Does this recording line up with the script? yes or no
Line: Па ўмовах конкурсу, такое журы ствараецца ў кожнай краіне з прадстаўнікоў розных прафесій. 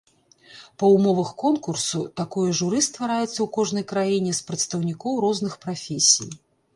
yes